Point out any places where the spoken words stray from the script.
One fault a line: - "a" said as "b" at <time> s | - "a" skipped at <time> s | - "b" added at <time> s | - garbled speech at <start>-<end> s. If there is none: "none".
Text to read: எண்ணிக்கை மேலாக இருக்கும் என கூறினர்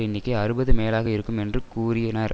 - "அறுபது" added at 0.3 s
- "என" said as "என்று" at 1.4 s